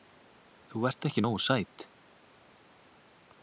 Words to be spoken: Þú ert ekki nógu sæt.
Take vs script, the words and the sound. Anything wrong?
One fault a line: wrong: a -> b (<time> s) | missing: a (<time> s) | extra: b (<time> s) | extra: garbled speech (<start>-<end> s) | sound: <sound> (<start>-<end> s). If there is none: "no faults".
no faults